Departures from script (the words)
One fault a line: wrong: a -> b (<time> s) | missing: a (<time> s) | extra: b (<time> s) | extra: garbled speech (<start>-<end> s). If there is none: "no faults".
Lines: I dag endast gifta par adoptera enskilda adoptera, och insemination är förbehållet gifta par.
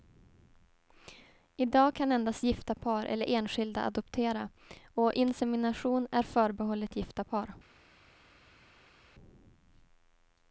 extra: kan (1.9 s)
wrong: adoptera -> eller (3.1 s)